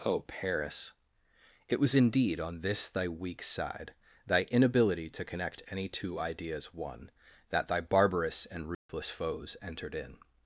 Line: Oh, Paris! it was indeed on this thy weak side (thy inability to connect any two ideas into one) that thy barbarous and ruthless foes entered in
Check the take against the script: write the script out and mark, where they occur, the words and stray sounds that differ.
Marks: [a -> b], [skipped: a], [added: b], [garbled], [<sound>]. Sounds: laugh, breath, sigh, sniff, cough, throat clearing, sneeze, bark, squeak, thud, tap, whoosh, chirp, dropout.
Oh, Paris! it was indeed on this thy weak side (thy inability to connect any two ideas [skipped: into] one) that thy barbarous and ruthless [dropout] foes entered in